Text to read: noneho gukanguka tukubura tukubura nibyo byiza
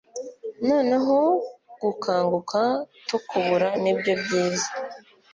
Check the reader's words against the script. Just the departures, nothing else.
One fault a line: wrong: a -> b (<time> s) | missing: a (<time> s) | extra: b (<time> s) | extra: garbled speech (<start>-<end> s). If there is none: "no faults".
missing: tukubura (3.7 s)